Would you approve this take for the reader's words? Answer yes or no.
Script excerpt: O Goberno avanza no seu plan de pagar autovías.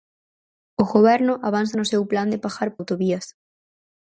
yes